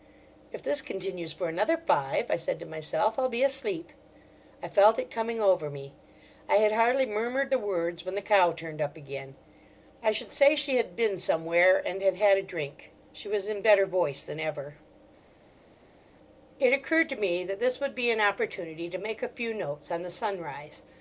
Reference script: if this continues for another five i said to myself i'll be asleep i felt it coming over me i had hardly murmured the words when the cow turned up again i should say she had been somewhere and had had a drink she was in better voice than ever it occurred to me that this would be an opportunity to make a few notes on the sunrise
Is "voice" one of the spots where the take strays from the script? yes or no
no